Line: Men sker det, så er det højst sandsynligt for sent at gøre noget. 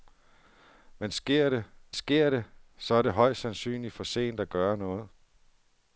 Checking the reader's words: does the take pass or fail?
fail